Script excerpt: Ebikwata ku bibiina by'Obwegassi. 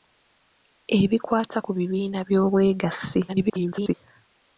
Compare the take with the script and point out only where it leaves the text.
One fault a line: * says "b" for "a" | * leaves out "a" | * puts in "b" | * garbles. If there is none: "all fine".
* garbles